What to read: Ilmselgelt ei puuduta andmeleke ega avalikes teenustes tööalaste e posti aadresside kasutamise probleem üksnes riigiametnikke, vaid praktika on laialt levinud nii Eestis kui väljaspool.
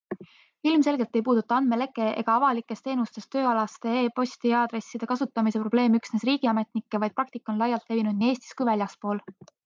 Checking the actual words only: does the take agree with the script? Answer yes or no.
yes